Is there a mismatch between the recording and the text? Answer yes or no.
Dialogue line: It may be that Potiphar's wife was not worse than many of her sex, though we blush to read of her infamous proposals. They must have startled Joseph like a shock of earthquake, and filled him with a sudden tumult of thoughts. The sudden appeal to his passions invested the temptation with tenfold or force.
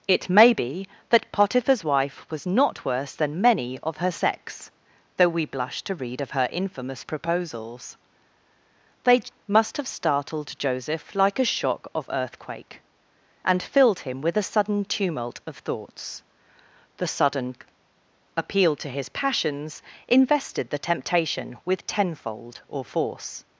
no